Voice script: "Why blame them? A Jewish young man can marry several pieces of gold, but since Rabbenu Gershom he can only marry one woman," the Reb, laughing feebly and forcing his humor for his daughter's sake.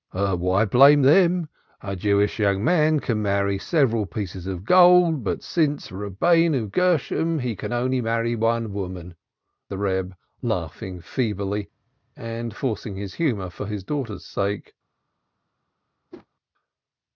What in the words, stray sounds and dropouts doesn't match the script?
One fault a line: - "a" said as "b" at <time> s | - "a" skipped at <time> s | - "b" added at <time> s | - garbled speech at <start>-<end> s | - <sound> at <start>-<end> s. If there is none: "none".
- whoosh at 16.1-16.3 s